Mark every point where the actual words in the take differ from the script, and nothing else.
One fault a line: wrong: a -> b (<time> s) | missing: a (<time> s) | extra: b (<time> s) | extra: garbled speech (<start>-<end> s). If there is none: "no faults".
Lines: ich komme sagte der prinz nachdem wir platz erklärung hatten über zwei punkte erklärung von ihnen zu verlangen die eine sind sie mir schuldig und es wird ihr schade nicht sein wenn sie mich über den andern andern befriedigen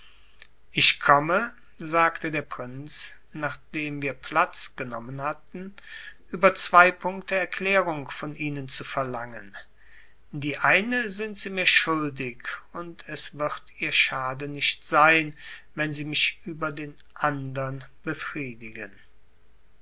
wrong: erklärung -> genommen (4.8 s)
missing: andern (17.8 s)